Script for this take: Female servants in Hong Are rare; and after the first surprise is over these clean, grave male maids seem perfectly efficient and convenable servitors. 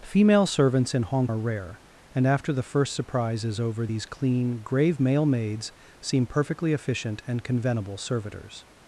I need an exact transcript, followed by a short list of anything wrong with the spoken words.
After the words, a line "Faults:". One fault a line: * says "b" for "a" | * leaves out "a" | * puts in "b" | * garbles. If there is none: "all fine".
Female servants in Hong Are rare; and after the first surprise is over these clean, grave male maids seem perfectly efficient and convenable servitors.
Faults:
all fine